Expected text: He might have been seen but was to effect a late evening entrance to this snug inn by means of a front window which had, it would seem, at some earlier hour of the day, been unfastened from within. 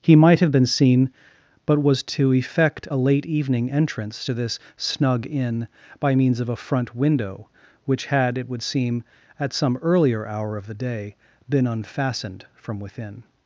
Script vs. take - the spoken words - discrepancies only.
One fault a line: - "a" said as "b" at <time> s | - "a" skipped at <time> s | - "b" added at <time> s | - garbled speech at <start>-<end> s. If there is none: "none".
none